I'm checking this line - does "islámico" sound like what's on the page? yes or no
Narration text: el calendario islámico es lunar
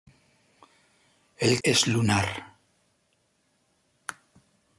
no